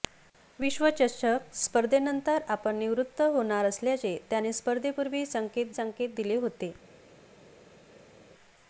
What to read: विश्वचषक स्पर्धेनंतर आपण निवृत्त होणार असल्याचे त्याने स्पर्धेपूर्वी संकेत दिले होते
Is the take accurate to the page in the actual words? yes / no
no